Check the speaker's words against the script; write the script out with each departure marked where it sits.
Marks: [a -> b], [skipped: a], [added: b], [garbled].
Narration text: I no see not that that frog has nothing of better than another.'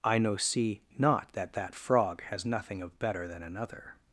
I no see not that that frog has nothing of better than another.'